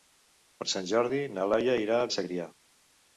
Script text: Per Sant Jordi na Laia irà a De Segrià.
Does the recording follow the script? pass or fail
pass